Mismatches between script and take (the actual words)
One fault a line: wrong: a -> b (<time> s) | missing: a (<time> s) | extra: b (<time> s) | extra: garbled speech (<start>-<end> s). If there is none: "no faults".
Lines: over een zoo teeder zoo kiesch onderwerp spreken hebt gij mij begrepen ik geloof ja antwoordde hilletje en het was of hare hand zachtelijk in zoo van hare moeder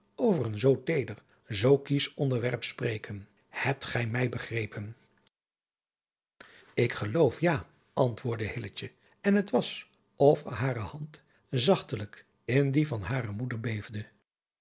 wrong: zoo -> die (12.7 s)